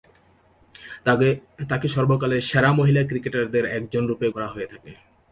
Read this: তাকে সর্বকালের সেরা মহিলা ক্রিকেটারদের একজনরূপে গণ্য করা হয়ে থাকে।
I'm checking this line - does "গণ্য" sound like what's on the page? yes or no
no